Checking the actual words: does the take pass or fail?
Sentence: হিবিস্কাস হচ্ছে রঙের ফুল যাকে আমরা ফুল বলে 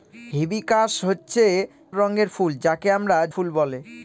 pass